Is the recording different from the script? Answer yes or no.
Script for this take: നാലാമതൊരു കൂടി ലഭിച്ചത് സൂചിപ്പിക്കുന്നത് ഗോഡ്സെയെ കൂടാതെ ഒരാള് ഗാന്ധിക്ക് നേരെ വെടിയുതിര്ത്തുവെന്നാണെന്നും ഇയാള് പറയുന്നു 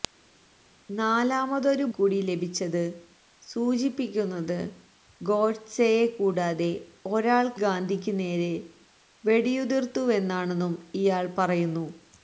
no